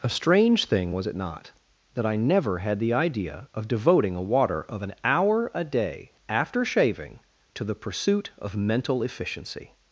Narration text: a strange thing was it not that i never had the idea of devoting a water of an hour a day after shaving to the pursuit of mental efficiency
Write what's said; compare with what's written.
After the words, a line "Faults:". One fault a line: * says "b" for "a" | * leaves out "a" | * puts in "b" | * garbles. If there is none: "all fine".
a strange thing was it not that i never had the idea of devoting a water of an hour a day after shaving to the pursuit of mental efficiency
Faults:
all fine